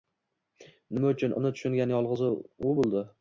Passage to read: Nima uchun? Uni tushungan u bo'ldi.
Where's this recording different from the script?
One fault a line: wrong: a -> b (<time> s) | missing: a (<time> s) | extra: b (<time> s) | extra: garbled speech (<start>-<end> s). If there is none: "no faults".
extra: yolg'iz (2.0 s)